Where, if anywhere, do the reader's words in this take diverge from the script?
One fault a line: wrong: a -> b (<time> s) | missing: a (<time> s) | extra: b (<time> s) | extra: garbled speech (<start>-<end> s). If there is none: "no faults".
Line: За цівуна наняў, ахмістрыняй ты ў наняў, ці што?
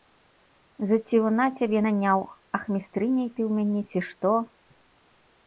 extra: цябе (1.6 s)
wrong: наняў -> мяне (3.6 s)